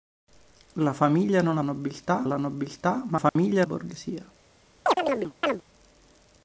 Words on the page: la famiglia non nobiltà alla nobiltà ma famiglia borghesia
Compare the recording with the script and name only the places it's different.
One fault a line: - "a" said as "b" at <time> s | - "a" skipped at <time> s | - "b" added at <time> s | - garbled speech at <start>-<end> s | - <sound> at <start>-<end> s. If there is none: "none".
- dropout at 3.3-3.4 s
- chirp at 4.9-5.6 s